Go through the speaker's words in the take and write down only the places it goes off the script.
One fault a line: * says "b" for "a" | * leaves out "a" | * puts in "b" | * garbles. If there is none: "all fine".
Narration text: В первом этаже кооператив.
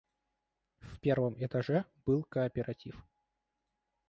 * puts in "был"